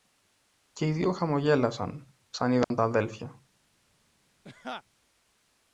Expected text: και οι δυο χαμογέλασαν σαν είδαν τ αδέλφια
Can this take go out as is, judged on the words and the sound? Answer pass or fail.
fail